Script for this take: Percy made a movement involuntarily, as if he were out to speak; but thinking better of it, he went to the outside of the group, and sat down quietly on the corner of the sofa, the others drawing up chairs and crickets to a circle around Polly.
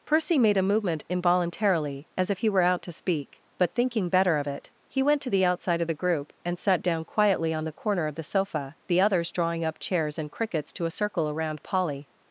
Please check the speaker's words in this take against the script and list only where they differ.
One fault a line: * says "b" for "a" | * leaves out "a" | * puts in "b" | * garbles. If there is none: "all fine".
all fine